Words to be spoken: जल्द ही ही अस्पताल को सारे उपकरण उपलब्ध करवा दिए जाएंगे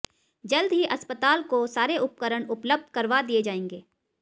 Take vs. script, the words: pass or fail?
fail